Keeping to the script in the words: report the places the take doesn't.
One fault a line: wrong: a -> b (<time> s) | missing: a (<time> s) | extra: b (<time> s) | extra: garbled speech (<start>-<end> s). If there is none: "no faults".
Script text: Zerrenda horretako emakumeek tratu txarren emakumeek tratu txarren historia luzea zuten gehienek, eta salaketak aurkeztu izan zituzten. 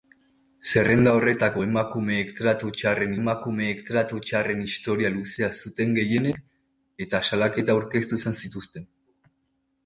no faults